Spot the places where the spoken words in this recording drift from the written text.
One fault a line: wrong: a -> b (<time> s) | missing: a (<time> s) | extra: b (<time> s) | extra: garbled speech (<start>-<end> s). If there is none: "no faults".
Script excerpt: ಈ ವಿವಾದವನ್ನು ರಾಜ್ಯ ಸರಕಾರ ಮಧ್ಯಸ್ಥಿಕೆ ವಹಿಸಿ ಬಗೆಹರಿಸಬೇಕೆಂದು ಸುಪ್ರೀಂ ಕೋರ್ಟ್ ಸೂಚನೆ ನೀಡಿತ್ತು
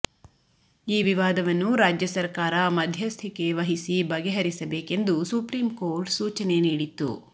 no faults